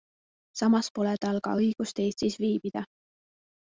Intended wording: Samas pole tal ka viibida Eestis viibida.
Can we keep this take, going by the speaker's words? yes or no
no